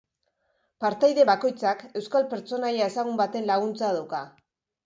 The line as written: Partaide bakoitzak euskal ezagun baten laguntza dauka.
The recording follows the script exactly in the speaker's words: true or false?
false